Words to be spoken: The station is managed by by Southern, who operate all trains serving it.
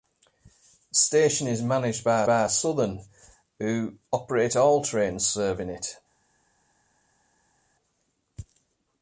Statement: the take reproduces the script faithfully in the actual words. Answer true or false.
true